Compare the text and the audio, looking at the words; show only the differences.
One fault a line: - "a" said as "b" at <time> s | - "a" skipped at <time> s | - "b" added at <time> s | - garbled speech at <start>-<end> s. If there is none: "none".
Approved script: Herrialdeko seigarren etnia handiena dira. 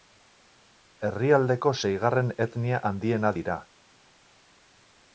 none